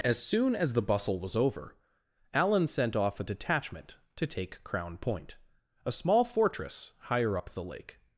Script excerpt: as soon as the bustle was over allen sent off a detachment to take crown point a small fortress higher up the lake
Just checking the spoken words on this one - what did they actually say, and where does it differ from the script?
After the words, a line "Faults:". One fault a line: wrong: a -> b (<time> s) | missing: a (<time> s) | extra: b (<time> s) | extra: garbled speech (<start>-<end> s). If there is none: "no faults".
as soon as the bustle was over allen sent off a detachment to take crown point a small fortress higher up the lake
Faults:
no faults